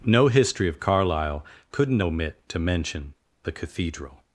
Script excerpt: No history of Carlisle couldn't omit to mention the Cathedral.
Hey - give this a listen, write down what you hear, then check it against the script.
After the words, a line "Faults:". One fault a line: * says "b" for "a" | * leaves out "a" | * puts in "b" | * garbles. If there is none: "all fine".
No history of Carlisle couldn't omit to mention the Cathedral.
Faults:
all fine